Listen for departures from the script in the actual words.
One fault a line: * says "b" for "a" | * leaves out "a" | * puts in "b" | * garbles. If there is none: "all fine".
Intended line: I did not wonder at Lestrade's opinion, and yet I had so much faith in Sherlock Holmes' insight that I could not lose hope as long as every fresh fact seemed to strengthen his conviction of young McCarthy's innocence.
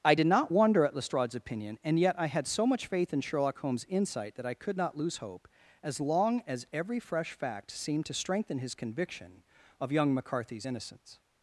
all fine